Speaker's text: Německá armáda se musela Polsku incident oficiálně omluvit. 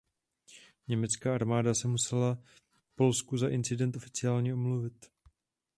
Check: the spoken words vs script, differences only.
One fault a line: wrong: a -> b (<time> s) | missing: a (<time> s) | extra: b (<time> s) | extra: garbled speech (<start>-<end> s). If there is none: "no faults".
extra: za (3.4 s)